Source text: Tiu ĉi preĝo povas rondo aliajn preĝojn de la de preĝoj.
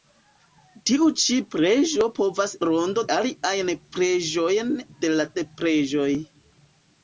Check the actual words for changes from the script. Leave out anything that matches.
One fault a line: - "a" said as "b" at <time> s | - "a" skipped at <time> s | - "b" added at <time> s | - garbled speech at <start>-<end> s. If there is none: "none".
none